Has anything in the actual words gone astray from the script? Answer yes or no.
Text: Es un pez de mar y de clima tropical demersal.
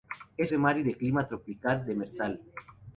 yes